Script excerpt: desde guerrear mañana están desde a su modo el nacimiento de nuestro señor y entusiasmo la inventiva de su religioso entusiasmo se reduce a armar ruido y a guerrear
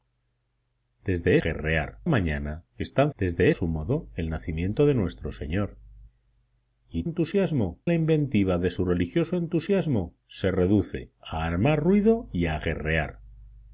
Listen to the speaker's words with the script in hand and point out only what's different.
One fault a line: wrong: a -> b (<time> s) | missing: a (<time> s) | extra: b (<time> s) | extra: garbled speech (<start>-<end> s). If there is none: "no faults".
no faults